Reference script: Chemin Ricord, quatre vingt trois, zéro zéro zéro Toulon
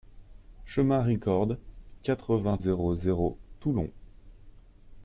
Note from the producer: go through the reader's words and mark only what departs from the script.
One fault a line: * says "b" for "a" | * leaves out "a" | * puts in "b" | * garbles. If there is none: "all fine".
* leaves out "trois zéro"